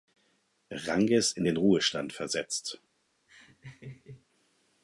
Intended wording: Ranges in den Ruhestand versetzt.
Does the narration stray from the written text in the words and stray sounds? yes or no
yes